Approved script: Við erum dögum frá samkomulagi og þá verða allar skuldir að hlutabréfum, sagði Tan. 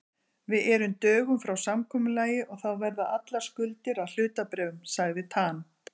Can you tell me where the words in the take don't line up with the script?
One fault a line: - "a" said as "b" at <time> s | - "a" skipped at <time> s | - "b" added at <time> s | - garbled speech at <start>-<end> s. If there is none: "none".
none